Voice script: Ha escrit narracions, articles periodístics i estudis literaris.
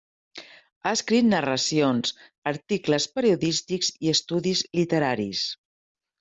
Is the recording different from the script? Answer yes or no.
no